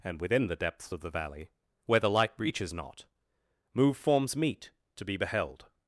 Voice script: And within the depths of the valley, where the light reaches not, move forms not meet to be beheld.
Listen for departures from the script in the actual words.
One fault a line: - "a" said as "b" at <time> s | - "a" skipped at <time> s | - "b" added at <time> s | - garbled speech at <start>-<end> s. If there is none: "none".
- "not" skipped at 4.3 s